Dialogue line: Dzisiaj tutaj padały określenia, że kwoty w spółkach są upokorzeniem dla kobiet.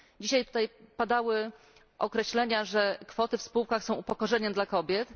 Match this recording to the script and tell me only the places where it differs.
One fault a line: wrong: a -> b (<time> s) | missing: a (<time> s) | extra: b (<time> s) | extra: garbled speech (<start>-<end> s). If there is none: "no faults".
no faults